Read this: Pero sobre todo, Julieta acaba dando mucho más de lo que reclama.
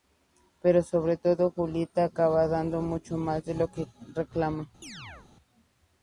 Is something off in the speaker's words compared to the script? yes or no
no